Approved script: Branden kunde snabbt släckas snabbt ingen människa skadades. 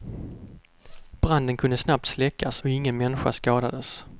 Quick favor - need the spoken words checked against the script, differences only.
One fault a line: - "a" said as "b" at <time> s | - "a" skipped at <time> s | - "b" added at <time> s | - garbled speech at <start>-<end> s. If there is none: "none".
- "snabbt" said as "och" at 2.6 s